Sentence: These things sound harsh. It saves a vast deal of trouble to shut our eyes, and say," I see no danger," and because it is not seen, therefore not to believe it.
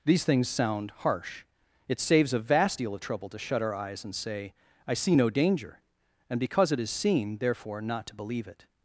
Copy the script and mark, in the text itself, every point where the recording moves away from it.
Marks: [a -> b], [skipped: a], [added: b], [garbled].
These things sound harsh. It saves a vast deal of trouble to shut our eyes, and say," I see no danger," and because it is [skipped: not] seen, therefore not to believe it.